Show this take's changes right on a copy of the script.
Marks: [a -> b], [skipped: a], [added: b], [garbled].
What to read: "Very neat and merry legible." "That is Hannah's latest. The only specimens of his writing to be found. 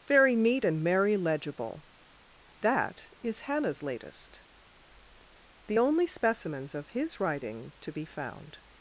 "Very neat and merry legible." "That is Hannah's latest. The only specimens of his writing to be found.